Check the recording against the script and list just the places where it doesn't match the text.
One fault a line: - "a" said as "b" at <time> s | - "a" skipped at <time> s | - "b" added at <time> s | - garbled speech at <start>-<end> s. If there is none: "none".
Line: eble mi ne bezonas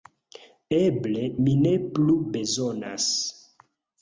- "plu" added at 2.0 s